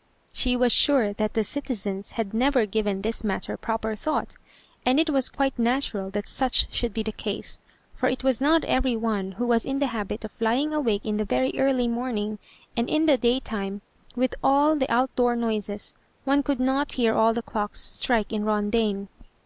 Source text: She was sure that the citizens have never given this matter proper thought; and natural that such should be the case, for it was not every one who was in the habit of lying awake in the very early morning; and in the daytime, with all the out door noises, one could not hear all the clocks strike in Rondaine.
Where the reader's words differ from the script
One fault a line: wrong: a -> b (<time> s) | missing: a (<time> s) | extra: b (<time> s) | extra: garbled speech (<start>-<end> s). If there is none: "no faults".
wrong: have -> had (2.1 s)
extra: it was quite (5.0 s)